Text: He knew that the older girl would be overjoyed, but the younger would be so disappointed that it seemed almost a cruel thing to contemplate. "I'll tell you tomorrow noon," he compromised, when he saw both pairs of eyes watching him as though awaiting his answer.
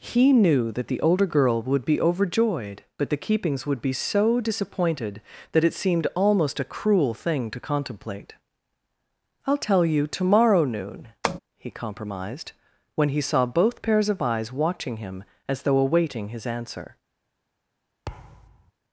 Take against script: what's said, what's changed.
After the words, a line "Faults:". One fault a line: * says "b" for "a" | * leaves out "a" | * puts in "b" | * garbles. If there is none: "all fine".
He knew that the older girl would be overjoyed, but the keepings would be so disappointed that it seemed almost a cruel thing to contemplate. "I'll tell you tomorrow noon," he compromised, when he saw both pairs of eyes watching him as though awaiting his answer.
Faults:
* says "keepings" for "younger"